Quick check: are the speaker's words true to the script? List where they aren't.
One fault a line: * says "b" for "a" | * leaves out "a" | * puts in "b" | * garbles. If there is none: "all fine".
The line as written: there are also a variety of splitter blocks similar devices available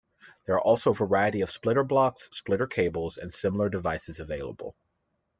* puts in "splitter cables and"